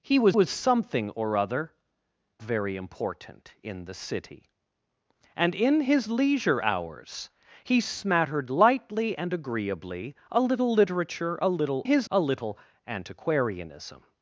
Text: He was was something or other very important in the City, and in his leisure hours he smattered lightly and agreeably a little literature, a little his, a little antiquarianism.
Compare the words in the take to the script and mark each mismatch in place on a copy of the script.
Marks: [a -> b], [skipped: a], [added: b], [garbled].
He was was something or other very important in the City, and in his leisure hours he smattered lightly and agreeably a little literature, a little his, a little antiquarianism.